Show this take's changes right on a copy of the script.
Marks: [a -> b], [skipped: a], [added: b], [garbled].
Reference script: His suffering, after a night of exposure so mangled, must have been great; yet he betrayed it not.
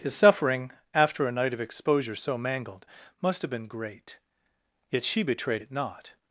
His suffering, after a night of exposure so mangled, must have been great; yet [he -> she] betrayed it not.